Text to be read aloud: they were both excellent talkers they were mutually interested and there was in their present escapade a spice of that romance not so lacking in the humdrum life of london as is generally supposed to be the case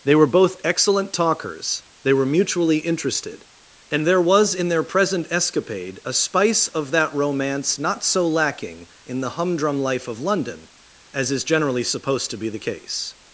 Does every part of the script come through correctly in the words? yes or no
yes